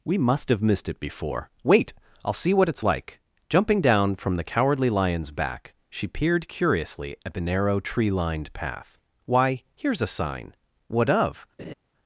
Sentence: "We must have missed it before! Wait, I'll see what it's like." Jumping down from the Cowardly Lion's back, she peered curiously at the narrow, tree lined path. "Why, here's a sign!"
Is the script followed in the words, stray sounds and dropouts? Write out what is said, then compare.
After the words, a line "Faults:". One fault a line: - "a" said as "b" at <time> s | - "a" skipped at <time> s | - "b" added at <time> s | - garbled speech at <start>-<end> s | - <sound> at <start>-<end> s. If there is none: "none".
"We must have missed it before! Wait, I'll see what it's like." Jumping down from the Cowardly Lion's back, she peered curiously at the narrow, tree lined path. "Why, here's a sign!" "What of
Faults:
- "What of" added at 10.9 s
- laugh at 11.6-11.7 s